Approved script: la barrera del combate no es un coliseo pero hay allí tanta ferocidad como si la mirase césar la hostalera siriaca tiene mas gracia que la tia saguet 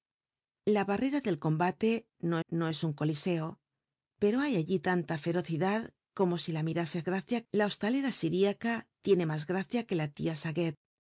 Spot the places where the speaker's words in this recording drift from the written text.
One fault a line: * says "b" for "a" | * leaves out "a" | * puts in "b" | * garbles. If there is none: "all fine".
* puts in "no"
* says "gracia" for "césar"